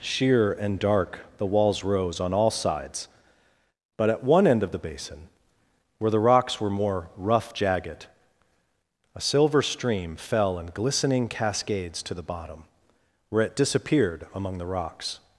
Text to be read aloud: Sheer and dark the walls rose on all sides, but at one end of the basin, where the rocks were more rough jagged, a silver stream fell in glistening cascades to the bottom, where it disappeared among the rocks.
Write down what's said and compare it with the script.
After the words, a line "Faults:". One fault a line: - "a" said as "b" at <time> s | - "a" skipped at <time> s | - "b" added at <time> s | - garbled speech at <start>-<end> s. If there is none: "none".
Sheer and dark the walls rose on all sides, but at one end of the basin, where the rocks were more rough jagged, a silver stream fell in glistening cascades to the bottom, where it disappeared among the rocks.
Faults:
none